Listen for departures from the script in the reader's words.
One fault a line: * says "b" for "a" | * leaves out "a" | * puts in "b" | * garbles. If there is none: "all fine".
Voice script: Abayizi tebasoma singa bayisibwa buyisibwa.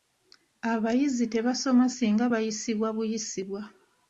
all fine